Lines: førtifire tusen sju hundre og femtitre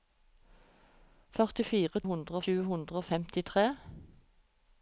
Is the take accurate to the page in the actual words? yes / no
no